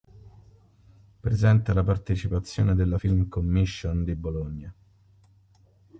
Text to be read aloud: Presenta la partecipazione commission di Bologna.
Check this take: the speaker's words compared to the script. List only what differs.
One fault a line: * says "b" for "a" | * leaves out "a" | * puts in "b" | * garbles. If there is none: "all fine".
* puts in "della film"